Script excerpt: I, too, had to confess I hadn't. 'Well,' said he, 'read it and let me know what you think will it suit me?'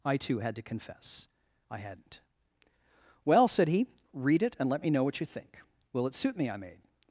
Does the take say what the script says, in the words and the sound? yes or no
no